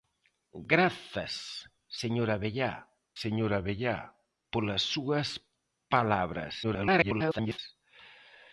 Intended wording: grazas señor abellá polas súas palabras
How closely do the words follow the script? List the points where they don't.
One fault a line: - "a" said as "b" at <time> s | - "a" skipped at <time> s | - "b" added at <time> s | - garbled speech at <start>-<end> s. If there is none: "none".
- "señor abellá" added at 3.2 s
- garbled speech at 6.6-7.6 s